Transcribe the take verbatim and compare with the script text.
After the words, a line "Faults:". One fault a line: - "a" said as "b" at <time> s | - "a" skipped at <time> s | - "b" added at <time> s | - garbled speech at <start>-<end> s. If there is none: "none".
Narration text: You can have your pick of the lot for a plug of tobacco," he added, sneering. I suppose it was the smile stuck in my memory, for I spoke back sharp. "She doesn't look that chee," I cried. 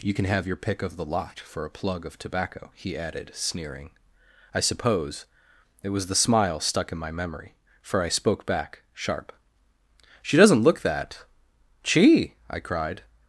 You can have your pick of the lot for a plug of tobacco," he added, sneering. I suppose it was the smile stuck in my memory, for I spoke back sharp. "She doesn't look that chee," I cried.
Faults:
none